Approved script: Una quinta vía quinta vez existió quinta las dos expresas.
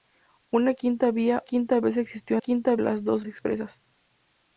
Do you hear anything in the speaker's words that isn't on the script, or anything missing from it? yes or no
no